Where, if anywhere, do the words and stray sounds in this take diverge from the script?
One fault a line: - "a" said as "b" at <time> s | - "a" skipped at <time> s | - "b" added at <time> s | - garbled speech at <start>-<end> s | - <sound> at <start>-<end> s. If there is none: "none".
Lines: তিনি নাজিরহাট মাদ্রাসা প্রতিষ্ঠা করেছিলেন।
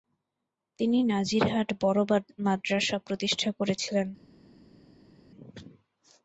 - "বড়" added at 1.8 s